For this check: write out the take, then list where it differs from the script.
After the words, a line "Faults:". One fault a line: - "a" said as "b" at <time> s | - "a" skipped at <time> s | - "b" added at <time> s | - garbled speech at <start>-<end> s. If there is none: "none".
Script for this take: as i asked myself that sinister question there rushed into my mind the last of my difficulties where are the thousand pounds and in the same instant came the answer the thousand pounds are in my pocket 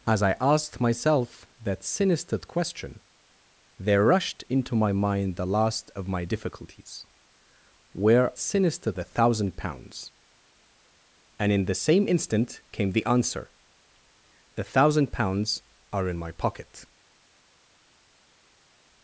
as i asked myself that sinister question there rushed into my mind the last of my difficulties where sinister the thousand pounds and in the same instant came the answer the thousand pounds are in my pocket
Faults:
- "are" said as "sinister" at 8.4 s